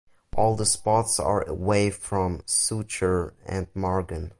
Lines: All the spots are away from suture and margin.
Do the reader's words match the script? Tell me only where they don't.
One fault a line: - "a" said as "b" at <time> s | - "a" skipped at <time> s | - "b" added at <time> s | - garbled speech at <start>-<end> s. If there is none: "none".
none